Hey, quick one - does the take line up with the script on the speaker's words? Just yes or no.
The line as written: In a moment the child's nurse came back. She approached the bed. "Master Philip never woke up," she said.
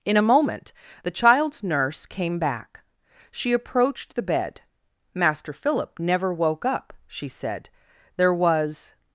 no